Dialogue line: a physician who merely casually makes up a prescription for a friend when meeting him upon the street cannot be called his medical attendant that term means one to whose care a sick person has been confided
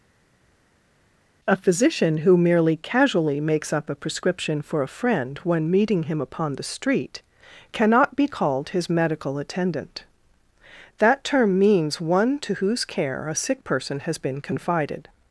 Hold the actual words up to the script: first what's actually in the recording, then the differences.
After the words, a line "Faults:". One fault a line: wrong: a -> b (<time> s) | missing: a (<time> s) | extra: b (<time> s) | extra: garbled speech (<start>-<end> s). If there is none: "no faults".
a physician who merely casually makes up a prescription for a friend when meeting him upon the street cannot be called his medical attendant that term means one to whose care a sick person has been confided
Faults:
no faults